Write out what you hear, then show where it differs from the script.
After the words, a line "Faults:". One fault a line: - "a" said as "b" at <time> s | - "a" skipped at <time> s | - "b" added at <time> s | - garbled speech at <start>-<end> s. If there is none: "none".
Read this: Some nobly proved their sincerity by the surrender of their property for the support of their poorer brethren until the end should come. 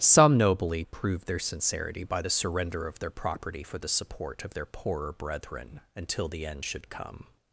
Some nobly proved their sincerity by the surrender of their property for the support of their poorer brethren until the end should come.
Faults:
none